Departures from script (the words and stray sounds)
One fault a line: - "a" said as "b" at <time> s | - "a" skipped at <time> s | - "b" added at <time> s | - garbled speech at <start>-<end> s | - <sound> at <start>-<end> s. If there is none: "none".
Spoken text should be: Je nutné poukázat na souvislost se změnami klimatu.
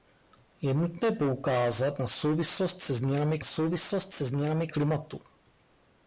- "souvislost se změnami" added at 3.4 s